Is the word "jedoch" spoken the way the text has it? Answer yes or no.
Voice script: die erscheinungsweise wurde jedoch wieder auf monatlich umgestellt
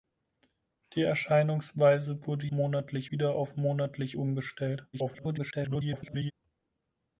no